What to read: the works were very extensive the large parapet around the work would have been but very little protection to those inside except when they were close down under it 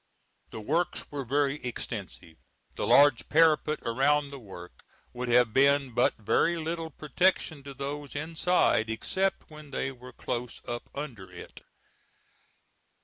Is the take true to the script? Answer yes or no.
no